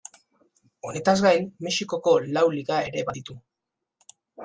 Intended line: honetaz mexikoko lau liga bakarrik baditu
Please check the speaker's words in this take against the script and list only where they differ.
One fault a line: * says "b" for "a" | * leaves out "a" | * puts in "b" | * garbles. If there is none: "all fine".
* puts in "gain"
* says "ere" for "bakarrik"